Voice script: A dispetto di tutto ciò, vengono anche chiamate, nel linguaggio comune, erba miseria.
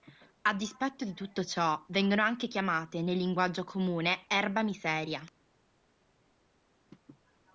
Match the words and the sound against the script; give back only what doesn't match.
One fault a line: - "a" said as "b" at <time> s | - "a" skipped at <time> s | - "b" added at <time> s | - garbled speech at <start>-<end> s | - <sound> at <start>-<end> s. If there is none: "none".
none